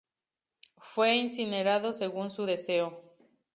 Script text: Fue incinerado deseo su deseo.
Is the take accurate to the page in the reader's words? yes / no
no